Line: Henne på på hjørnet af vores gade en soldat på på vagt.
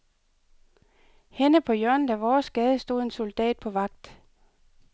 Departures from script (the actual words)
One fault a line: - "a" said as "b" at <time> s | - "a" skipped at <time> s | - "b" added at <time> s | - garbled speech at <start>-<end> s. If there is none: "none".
- "på" skipped at 1.7 s
- "stod" added at 2.8 s
- "på" skipped at 3.7 s